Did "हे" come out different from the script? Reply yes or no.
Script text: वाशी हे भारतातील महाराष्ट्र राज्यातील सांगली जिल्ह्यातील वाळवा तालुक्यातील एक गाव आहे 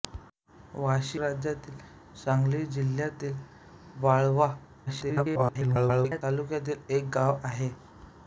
yes